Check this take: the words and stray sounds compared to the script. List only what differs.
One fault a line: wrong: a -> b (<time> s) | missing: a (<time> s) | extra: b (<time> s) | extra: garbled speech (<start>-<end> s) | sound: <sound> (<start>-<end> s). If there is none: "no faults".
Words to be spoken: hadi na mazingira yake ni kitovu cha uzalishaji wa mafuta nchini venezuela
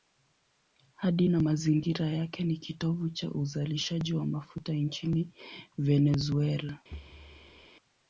sound: thud (6.9-7.7 s)